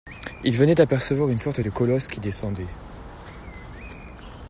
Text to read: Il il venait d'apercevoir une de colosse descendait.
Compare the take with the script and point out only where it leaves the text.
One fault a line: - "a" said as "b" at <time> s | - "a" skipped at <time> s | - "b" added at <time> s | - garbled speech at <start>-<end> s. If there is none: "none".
- "il" skipped at 0.6 s
- "sorte" added at 1.4 s
- "qui" added at 2.1 s